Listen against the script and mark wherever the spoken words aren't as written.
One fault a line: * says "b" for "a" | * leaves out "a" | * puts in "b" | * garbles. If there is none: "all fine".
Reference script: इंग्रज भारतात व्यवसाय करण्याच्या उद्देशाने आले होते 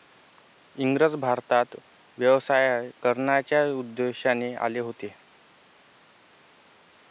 all fine